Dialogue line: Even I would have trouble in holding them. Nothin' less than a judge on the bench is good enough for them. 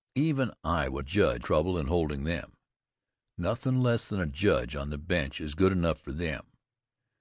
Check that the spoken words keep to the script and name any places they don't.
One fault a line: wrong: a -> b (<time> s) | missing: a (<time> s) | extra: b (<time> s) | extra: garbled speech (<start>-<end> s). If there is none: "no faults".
wrong: have -> judge (1.0 s)